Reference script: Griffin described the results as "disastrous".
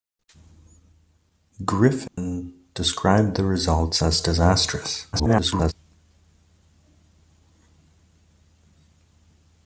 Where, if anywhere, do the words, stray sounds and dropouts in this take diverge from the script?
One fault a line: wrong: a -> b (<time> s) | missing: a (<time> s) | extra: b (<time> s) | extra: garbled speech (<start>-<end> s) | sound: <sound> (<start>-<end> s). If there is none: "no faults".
sound: dropout (2.1-2.2 s)
extra: garbled speech (5.1-5.7 s)